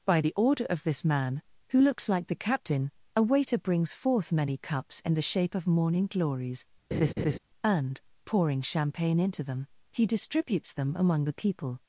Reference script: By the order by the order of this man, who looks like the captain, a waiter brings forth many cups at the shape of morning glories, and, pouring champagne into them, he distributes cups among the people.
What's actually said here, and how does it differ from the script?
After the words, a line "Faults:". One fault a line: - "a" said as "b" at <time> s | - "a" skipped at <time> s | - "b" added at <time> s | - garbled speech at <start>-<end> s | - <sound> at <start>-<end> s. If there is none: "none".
By the order of this man, who looks like the captain, a waiter brings forth many cups in the shape of morning glories, and, pouring champagne into them, he distributes them among the people.
Faults:
- "by the order" skipped at 0.6 s
- "at" said as "in" at 5.0 s
- laugh at 6.9-7.4 s
- "cups" said as "them" at 10.7 s